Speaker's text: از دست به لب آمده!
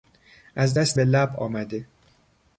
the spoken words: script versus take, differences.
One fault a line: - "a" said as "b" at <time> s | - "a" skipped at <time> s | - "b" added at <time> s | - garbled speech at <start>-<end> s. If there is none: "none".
none